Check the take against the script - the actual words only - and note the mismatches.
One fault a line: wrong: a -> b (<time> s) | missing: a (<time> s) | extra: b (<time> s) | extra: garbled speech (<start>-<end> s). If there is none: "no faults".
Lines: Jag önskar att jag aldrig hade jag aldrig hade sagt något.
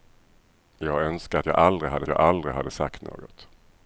no faults